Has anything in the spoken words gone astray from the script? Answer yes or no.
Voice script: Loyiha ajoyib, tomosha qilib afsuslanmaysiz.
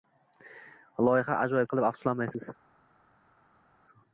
yes